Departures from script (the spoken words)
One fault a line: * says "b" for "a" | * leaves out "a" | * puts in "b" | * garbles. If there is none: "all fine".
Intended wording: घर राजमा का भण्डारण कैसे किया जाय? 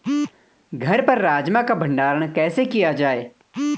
* puts in "पर"